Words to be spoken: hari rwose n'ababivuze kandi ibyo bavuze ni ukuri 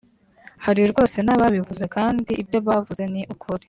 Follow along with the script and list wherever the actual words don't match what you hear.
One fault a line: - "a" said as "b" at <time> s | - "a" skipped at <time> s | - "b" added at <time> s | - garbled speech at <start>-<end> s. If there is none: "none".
none